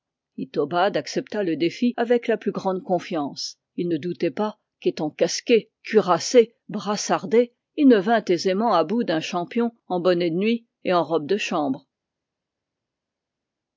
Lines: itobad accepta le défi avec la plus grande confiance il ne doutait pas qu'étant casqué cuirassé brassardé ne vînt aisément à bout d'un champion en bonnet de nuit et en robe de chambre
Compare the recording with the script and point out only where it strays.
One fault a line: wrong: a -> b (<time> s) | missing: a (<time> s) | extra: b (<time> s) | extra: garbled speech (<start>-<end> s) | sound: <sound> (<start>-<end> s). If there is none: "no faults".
extra: il (7.7 s)